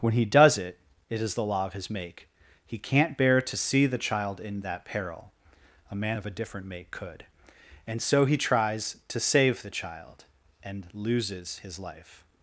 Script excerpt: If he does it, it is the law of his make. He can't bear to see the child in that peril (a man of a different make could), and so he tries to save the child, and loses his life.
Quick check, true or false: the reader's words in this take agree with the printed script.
false